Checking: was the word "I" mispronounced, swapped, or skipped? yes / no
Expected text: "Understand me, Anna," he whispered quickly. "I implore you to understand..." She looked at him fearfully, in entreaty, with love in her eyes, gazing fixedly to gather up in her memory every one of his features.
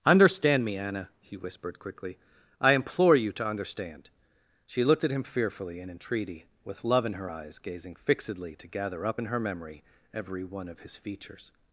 no